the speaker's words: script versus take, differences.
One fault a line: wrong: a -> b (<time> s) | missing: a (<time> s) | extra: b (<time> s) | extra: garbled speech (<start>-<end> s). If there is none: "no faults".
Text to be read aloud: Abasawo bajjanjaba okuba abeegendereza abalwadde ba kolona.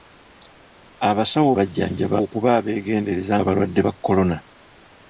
no faults